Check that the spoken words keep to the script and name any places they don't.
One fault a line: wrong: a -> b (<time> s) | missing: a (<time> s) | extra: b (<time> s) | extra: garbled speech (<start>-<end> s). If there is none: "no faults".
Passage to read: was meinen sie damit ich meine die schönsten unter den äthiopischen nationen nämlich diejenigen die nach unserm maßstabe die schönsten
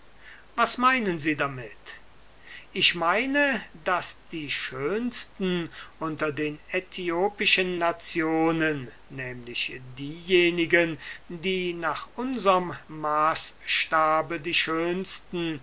extra: daß (3.8 s)